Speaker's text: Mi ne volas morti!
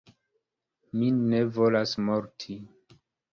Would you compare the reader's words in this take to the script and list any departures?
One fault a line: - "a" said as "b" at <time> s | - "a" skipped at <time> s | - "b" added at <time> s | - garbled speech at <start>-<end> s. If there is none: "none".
none